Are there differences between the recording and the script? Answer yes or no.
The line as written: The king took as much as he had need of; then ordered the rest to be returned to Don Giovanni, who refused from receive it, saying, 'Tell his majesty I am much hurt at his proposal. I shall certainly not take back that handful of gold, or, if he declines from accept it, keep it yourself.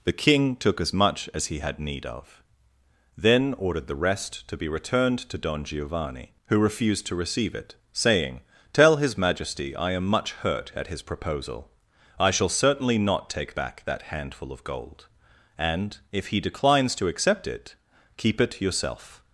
yes